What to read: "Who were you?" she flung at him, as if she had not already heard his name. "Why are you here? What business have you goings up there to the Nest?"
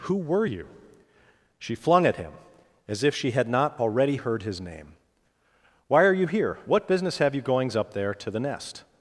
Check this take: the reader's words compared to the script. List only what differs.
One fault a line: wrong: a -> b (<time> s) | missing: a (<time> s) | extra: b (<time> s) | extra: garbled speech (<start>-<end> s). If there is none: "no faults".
no faults